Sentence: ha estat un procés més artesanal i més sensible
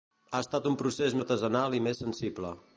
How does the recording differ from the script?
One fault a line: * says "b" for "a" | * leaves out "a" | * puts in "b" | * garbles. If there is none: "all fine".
* leaves out "més"